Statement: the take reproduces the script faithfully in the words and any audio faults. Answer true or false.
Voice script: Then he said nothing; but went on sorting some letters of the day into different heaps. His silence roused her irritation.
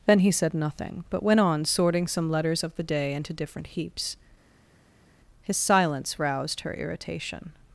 true